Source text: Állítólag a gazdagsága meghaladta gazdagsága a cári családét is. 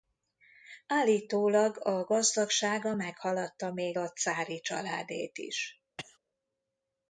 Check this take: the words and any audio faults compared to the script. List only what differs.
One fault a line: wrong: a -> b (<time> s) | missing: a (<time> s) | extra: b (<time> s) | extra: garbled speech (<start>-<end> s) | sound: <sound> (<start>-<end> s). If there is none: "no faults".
wrong: gazdagsága -> még (3.7 s)
sound: cough (6.0-6.2 s)